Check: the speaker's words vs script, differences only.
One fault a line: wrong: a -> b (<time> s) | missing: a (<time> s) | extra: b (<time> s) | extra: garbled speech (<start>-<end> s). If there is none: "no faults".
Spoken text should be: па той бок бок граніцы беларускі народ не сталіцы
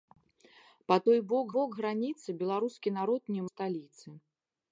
no faults